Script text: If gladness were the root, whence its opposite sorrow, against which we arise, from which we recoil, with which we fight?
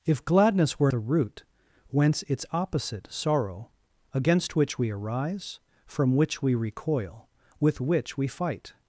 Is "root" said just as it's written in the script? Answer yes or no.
yes